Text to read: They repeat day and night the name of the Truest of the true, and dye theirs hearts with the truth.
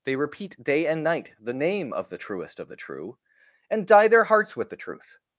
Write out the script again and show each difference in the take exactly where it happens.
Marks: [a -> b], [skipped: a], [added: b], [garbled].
They repeat day and night the name of the Truest of the true, and dye [theirs -> their] hearts with the truth.